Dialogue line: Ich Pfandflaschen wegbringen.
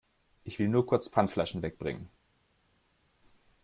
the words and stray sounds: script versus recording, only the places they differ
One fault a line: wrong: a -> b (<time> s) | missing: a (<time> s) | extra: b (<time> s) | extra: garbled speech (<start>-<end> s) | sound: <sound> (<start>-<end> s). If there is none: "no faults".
extra: will nur kurz (0.6 s)